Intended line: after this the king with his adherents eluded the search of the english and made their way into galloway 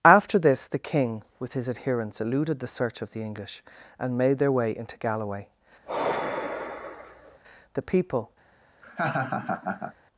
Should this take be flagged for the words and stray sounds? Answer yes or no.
yes